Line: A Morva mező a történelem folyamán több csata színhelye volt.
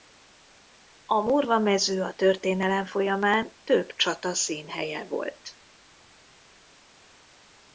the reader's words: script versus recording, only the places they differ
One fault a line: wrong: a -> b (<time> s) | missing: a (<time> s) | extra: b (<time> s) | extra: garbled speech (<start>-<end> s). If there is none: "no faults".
no faults